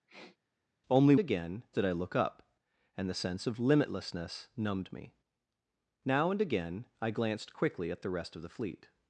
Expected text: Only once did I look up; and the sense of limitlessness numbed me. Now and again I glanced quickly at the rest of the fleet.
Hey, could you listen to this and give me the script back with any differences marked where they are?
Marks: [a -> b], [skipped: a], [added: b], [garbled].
Only [once -> again] did I look up; and the sense of limitlessness numbed me. Now and again I glanced quickly at the rest of the fleet.